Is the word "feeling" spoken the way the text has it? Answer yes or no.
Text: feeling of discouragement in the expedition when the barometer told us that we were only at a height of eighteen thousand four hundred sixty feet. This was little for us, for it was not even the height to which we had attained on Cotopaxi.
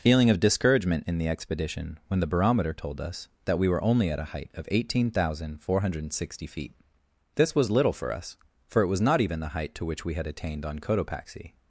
yes